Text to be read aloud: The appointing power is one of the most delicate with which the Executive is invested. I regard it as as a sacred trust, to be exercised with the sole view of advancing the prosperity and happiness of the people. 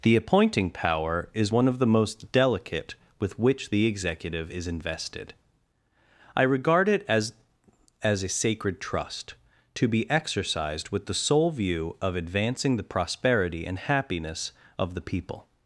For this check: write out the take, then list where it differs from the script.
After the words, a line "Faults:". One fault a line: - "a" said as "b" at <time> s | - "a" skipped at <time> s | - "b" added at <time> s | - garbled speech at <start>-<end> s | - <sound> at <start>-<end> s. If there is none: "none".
The appointing power is one of the most delicate with which the Executive is invested. I regard it as as a sacred trust, to be exercised with the sole view of advancing the prosperity and happiness of the people.
Faults:
none